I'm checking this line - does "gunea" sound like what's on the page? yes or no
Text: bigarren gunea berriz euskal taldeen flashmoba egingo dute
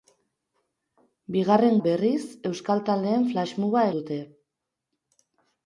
no